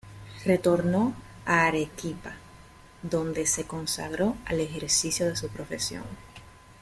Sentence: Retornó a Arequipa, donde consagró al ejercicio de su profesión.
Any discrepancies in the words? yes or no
yes